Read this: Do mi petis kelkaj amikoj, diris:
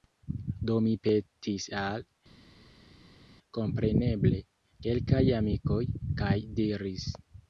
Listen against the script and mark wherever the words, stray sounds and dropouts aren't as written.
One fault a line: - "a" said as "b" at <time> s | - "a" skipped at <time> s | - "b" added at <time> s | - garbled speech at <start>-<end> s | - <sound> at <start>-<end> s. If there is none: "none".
- "al kompreneble" added at 1.8 s
- "kaj" added at 6.2 s